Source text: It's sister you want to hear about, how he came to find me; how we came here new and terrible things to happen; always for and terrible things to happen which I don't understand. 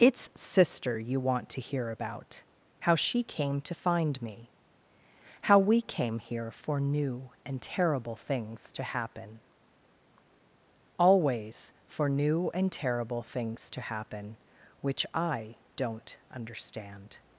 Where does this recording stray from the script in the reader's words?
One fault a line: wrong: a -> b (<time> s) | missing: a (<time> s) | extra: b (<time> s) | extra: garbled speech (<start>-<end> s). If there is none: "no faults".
wrong: he -> she (3.0 s)
extra: for (6.5 s)
extra: new (12.1 s)